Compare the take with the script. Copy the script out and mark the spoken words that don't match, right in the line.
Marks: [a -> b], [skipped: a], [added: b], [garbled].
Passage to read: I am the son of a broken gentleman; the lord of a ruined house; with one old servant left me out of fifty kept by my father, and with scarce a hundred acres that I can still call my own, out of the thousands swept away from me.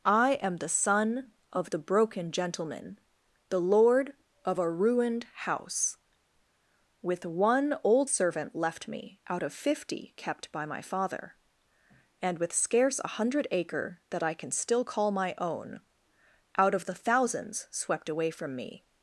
I am the son of [a -> the] broken gentleman; the lord of a ruined house; with one old servant left me out of fifty kept by my father, and with scarce a hundred [acres -> acre] that I can still call my own, out of the thousands swept away from me.